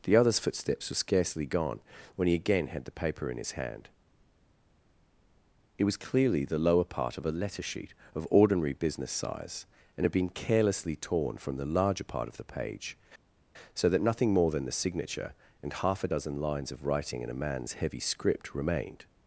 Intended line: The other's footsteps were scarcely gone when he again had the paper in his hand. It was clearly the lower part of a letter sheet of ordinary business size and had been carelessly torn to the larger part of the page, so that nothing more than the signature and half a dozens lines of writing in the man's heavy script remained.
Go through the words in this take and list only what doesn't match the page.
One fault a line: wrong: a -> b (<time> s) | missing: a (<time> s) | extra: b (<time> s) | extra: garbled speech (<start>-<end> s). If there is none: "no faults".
wrong: to -> from (11.4 s)
wrong: dozens -> dozen (16.1 s)
wrong: the -> a (17.3 s)